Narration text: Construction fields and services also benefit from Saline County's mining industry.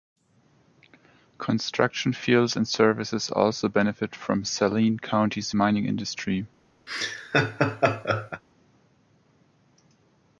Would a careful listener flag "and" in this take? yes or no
no